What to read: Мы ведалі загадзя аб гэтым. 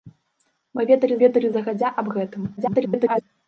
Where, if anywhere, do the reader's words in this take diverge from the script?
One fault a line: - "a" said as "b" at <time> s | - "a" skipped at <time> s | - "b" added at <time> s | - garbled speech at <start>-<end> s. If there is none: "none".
- "ведалі" added at 1.3 s
- garbled speech at 2.6-3.2 s